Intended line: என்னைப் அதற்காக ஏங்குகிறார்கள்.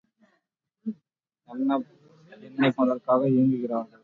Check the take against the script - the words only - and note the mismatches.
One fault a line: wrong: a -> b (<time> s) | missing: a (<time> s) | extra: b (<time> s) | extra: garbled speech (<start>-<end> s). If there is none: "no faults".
no faults